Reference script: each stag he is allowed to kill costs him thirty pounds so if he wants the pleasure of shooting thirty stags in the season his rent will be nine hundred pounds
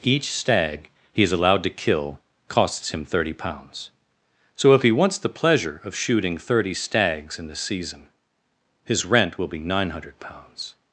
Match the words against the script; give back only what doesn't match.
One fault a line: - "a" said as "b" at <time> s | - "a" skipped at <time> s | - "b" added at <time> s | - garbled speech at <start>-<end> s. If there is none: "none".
none